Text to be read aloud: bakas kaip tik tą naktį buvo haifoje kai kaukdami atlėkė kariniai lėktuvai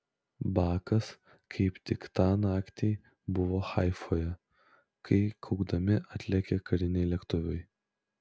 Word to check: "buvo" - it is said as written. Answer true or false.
true